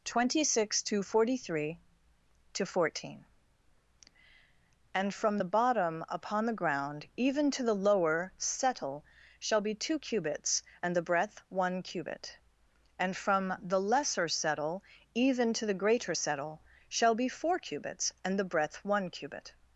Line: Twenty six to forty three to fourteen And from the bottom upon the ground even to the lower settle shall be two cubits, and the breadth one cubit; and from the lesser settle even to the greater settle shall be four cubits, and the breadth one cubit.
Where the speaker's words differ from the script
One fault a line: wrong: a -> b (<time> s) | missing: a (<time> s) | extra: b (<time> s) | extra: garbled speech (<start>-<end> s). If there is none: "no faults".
no faults